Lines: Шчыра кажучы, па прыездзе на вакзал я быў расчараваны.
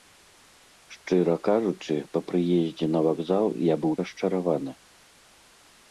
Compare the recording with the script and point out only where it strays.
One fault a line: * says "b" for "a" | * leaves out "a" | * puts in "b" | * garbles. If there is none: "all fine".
all fine